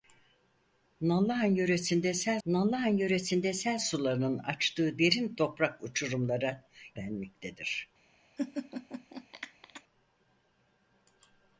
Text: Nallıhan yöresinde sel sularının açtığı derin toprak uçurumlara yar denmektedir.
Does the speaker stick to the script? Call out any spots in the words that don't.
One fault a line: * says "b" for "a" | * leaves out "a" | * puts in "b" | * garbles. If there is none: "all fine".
* puts in "nallıhan yöresinde sel"
* leaves out "yar"